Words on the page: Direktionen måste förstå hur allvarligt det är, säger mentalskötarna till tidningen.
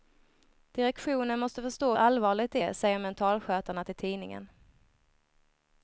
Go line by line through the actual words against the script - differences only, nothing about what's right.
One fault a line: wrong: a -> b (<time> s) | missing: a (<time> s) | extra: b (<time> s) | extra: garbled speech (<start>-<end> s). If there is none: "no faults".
missing: hur (1.9 s)